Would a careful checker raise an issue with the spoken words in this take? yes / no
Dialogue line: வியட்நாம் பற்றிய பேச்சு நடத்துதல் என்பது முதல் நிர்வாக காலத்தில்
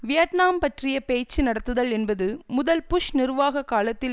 yes